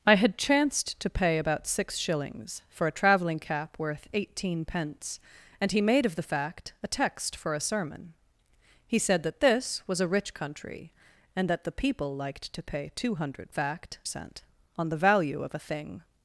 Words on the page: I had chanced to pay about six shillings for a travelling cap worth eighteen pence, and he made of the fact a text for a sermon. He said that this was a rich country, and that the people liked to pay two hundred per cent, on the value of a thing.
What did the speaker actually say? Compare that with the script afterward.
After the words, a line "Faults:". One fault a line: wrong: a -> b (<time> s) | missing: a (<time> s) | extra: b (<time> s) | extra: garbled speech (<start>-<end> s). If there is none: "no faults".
I had chanced to pay about six shillings for a travelling cap worth eighteen pence, and he made of the fact a text for a sermon. He said that this was a rich country, and that the people liked to pay two hundred fact cent, on the value of a thing.
Faults:
wrong: per -> fact (13.5 s)